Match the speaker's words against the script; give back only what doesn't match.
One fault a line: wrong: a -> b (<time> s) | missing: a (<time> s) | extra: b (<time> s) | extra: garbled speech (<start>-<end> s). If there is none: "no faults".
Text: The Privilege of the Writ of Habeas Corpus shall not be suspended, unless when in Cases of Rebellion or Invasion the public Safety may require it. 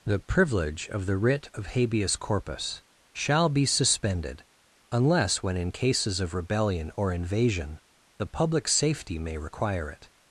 missing: not (3.5 s)